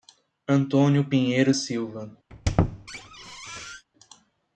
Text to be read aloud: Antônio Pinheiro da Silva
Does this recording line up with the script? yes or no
no